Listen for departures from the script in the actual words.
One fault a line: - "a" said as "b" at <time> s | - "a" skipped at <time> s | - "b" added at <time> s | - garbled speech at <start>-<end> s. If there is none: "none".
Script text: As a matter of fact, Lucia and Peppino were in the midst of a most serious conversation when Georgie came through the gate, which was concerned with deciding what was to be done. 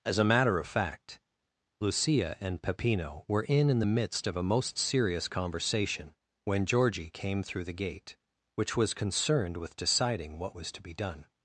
- "in" added at 3.7 s